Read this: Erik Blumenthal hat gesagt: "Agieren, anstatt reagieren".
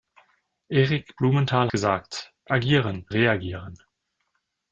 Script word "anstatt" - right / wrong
wrong